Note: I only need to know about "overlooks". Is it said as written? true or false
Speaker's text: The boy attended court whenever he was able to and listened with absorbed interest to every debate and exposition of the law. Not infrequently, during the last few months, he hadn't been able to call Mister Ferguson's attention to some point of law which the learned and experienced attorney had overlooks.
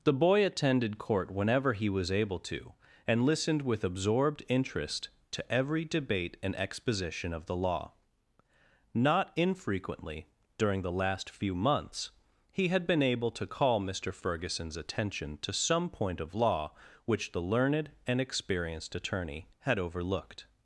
false